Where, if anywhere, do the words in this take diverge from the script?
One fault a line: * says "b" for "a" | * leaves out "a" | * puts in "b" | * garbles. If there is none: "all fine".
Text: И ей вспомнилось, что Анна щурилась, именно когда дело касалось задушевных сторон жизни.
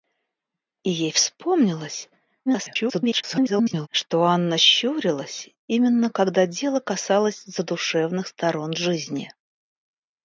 * garbles